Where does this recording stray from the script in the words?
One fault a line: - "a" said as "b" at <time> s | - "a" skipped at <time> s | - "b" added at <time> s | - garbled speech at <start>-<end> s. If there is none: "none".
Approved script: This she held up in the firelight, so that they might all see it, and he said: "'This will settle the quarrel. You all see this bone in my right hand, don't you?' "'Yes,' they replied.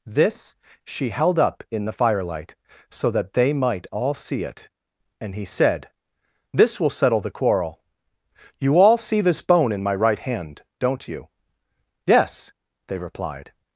none